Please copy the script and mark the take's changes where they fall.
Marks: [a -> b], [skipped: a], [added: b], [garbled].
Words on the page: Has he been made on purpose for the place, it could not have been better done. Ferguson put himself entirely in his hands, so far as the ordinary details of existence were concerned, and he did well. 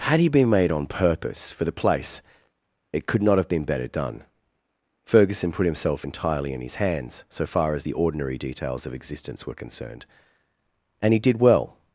[Has -> Had] he been made on purpose for the place, it could not have been better done. Ferguson put himself entirely in his hands, so far as the ordinary details of existence were concerned, and he did well.